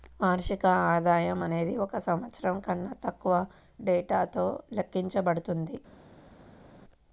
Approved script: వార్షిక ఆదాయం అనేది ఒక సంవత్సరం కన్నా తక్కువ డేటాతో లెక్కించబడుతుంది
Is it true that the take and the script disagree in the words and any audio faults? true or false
false